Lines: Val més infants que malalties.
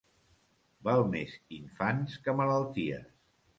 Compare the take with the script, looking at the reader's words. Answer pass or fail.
pass